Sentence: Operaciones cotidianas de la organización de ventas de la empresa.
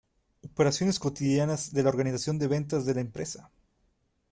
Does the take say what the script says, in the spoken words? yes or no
yes